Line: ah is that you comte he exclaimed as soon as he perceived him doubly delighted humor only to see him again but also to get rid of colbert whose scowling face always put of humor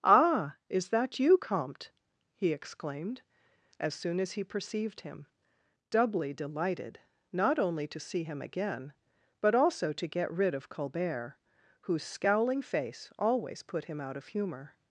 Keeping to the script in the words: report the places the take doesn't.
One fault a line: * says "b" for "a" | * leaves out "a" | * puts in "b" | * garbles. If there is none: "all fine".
* says "not" for "humor"
* puts in "him out"